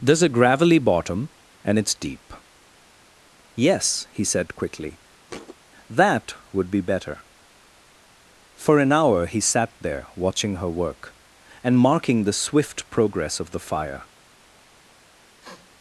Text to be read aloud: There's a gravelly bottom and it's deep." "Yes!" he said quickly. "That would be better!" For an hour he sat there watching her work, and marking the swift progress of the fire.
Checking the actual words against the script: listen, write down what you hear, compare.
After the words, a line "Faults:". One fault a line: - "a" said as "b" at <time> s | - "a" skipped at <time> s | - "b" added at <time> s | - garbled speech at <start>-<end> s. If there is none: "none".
There's a gravelly bottom and it's deep." "Yes!" he said quickly. "That would be better!" For an hour he sat there watching her work, and marking the swift progress of the fire.
Faults:
none